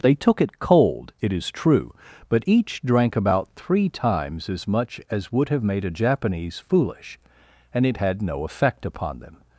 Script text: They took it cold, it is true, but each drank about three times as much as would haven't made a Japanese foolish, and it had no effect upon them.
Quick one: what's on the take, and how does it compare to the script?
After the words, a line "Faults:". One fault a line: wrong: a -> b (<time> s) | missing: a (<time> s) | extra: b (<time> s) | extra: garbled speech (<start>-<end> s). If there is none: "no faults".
They took it cold, it is true, but each drank about three times as much as would have made a Japanese foolish, and it had no effect upon them.
Faults:
wrong: haven't -> have (5.5 s)